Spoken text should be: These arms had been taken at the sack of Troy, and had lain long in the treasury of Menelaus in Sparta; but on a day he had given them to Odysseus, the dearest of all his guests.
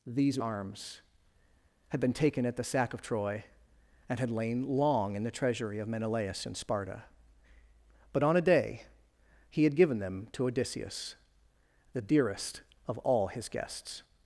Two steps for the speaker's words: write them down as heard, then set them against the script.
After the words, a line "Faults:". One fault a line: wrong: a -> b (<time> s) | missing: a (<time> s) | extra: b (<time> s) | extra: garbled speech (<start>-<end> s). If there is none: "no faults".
These arms had been taken at the sack of Troy, and had lain long in the treasury of Menelaus in Sparta; but on a day he had given them to Odysseus, the dearest of all his guests.
Faults:
no faults